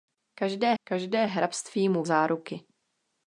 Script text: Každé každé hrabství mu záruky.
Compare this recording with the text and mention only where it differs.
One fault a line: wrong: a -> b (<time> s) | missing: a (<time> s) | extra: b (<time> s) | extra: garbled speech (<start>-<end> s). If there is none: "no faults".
no faults